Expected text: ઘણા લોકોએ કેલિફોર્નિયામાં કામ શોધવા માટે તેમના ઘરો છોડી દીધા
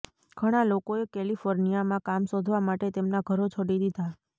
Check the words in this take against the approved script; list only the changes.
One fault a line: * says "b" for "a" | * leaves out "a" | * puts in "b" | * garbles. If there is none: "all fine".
all fine